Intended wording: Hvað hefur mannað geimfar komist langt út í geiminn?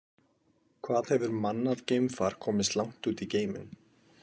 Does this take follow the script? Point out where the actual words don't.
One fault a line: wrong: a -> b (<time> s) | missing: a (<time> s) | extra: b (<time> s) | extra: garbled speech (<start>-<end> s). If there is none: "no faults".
no faults